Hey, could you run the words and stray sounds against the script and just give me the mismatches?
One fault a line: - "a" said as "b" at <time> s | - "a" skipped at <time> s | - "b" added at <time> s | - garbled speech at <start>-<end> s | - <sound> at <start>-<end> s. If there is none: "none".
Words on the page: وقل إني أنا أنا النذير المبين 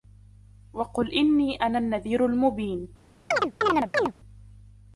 - "أنا" skipped at 1.8 s
- chirp at 3.3-4.1 s